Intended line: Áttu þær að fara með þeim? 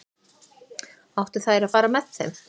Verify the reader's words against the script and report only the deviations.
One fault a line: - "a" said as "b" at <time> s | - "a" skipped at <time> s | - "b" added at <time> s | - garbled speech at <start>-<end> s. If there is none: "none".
none